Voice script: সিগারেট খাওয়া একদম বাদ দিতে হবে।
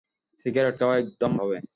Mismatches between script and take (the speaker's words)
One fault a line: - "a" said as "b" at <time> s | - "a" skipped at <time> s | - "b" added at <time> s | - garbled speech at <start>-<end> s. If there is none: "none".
- "বাদ দিতে" skipped at 1.3 s